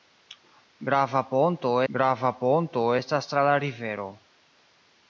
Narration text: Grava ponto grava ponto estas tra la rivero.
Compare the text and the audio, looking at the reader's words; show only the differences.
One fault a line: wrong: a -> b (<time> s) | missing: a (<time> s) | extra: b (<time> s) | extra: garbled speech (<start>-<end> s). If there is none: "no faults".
no faults